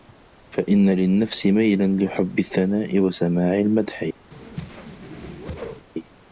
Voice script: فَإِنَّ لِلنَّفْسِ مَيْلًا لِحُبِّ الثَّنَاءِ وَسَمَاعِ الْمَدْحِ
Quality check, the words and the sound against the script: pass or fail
fail